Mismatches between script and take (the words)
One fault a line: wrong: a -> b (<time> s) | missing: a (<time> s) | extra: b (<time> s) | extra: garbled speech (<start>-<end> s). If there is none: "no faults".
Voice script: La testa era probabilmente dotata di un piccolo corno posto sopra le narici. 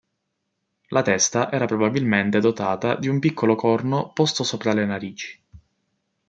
no faults